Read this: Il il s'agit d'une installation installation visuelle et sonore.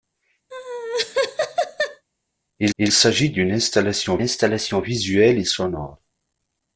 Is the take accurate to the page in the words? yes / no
yes